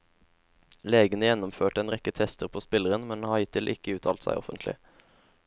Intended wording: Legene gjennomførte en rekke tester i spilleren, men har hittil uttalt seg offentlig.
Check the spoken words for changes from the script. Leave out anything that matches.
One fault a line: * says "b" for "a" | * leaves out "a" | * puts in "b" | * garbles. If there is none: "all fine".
* says "på" for "i"
* puts in "ikke"